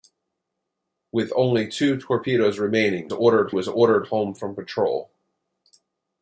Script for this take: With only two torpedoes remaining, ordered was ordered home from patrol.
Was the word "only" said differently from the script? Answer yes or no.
no